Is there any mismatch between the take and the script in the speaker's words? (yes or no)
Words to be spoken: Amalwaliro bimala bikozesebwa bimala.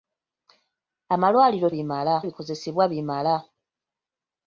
no